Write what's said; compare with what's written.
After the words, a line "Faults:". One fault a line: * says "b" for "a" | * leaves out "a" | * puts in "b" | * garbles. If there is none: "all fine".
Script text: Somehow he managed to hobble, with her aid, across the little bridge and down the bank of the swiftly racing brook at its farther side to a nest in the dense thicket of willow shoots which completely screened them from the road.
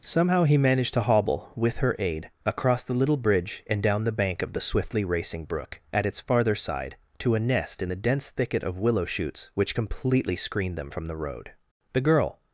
Somehow he managed to hobble, with her aid, across the little bridge and down the bank of the swiftly racing brook at its farther side to a nest in the dense thicket of willow shoots which completely screened them from the road. The girl
Faults:
* puts in "The girl"